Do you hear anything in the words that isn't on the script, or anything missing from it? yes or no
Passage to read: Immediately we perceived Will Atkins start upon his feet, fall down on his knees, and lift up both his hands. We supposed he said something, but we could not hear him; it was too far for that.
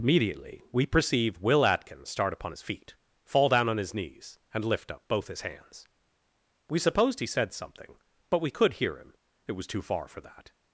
yes